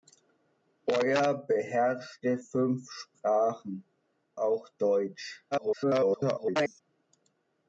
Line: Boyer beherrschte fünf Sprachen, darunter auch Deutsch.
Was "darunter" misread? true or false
true